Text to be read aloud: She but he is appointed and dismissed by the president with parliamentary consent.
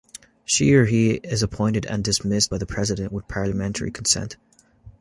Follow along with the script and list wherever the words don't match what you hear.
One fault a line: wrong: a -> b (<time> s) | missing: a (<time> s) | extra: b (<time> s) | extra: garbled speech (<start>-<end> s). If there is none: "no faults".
wrong: but -> or (0.7 s)